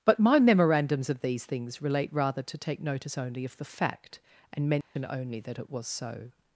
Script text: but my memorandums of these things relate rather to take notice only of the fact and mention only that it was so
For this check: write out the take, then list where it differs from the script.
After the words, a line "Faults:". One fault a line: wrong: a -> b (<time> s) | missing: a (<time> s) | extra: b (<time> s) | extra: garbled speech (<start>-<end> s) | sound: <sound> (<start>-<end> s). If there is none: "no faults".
but my memorandums of these things relate rather to take notice only of the fact and mention only that it was so
Faults:
sound: dropout (4.8-5.0 s)